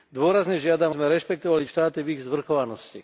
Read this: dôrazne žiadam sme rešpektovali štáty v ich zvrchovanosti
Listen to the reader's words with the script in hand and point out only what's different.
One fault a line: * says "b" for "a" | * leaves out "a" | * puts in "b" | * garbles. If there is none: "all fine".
all fine